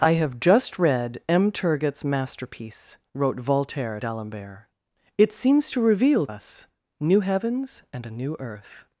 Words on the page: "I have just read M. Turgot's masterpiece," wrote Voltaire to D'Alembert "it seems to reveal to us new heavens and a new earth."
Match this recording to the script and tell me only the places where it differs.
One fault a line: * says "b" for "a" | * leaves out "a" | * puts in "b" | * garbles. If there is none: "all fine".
* leaves out "to"
* leaves out "to"